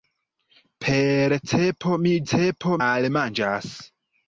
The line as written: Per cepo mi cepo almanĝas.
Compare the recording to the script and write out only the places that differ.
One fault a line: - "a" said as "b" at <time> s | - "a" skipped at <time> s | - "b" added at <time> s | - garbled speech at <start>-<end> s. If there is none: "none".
none